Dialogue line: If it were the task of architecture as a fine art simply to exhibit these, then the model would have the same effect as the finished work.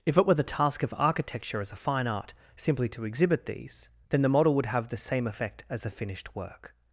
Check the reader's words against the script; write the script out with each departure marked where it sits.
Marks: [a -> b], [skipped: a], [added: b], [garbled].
If it were the task of architecture as a fine art simply to exhibit these, then the model would have the same effect as the finished work.